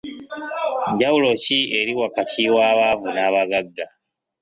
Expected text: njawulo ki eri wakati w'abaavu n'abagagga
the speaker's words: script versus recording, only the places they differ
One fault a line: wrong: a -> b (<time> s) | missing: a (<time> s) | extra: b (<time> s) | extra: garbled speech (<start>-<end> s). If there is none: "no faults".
no faults